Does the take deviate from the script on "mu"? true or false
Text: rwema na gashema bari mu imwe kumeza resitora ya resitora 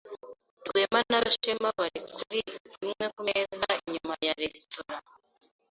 true